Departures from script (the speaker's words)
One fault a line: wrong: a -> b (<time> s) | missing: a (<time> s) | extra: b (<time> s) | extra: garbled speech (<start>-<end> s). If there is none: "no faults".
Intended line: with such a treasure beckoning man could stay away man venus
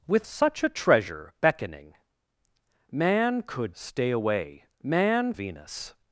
no faults